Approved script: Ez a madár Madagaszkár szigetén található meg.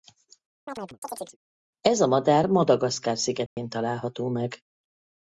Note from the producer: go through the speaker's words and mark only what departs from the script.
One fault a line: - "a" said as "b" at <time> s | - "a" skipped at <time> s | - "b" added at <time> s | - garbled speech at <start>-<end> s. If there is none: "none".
none